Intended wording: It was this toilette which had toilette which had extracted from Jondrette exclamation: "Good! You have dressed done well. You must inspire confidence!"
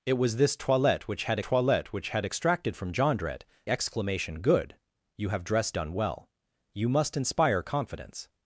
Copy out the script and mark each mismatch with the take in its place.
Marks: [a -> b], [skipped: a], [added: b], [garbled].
It was this toilette which had toilette which had extracted from Jondrette exclamation: "Good! You have dressed done well. You must inspire confidence!"